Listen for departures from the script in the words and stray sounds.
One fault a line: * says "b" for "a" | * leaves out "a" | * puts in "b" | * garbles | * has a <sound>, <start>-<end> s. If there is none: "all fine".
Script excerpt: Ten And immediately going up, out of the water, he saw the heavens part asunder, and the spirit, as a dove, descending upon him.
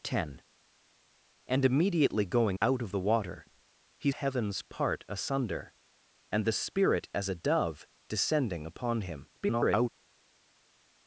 * leaves out "up"
* leaves out "saw the"
* garbles